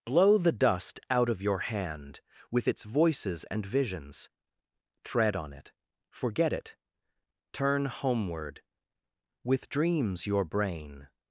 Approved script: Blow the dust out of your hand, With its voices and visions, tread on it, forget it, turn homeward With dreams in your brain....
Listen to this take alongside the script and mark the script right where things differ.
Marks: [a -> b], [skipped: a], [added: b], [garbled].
Blow the dust out of your hand, With its voices and visions, tread on it, forget it, turn homeward With dreams [skipped: in] your brain....